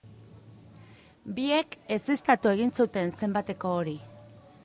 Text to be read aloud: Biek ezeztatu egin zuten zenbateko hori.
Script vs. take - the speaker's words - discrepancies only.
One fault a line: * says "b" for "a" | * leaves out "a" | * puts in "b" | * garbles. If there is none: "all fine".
all fine